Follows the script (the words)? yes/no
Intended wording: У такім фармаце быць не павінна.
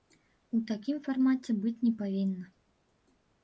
yes